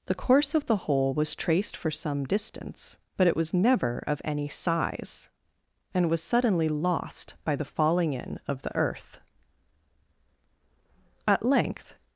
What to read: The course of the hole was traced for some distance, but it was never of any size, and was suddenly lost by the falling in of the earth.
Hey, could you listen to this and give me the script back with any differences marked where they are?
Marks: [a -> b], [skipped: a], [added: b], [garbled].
The course of the hole was traced for some distance, but it was never of any size, and was suddenly lost by the falling in of the earth. [added: At length]